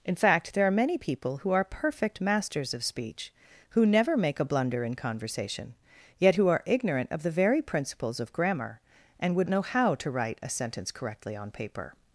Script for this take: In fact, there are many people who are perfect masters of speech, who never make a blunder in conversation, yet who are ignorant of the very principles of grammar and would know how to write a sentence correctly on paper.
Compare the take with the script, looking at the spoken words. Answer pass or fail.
pass